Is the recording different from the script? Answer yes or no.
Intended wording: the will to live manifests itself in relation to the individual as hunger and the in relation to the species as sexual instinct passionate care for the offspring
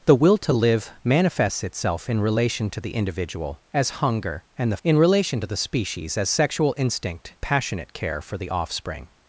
no